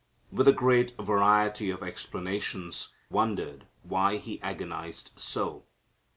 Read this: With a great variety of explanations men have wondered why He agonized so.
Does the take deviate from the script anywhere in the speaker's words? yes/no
yes